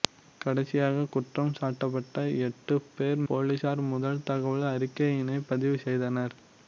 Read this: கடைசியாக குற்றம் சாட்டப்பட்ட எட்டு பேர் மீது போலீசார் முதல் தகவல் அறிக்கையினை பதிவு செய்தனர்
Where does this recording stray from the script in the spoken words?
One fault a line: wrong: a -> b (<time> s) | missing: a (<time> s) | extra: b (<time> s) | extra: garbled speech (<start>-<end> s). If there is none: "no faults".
missing: மீது (3.2 s)